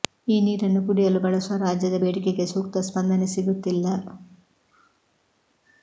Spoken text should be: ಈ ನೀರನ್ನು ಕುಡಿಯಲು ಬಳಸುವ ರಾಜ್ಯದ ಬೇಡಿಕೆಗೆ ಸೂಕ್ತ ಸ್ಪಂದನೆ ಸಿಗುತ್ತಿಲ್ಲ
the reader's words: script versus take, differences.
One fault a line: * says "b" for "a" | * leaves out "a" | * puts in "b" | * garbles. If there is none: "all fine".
all fine